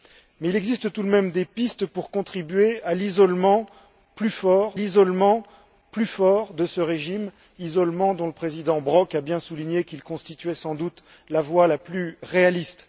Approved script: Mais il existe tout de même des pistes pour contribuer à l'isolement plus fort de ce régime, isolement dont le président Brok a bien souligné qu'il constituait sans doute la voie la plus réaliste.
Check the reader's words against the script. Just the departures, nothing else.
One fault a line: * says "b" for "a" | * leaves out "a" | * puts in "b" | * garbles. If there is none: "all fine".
* puts in "l'isolement plus fort"